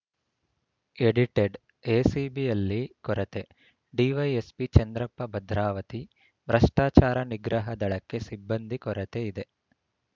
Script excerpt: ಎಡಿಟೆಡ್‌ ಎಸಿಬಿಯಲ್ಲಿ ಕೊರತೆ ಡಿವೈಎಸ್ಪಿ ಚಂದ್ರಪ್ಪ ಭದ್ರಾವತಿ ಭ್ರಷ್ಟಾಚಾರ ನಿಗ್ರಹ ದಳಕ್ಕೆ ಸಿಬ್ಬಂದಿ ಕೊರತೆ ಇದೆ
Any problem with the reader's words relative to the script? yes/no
no